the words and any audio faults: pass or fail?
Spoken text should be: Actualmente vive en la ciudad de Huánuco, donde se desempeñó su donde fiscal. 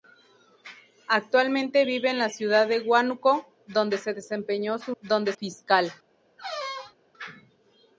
fail